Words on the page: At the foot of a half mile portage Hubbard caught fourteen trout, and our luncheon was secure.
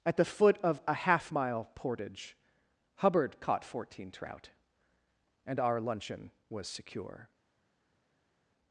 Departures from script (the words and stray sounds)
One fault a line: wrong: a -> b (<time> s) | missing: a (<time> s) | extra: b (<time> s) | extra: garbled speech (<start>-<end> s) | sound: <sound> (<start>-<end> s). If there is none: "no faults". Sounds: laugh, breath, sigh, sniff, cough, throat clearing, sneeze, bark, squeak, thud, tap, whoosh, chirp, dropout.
no faults